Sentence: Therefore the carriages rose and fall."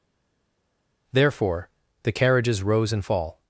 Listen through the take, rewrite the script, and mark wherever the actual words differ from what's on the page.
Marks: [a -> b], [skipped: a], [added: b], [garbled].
Therefore the carriages rose and fall."